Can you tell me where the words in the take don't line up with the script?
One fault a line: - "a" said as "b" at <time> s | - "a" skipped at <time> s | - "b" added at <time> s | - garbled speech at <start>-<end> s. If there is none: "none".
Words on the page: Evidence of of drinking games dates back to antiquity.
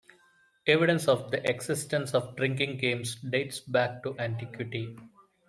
- "the existence" added at 1.3 s